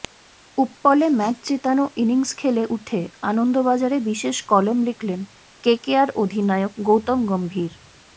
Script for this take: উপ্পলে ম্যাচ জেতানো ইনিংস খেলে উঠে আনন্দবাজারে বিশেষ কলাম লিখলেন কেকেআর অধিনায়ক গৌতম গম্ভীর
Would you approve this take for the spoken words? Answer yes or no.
yes